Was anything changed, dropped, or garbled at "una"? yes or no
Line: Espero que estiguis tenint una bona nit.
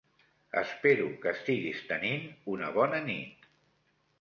no